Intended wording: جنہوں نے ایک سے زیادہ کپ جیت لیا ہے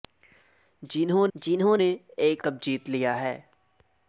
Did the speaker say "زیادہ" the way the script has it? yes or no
no